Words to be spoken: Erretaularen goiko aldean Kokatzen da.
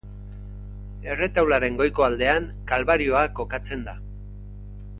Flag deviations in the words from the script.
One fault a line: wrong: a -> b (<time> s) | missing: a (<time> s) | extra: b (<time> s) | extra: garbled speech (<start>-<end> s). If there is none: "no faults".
extra: Kalbarioa (2.7 s)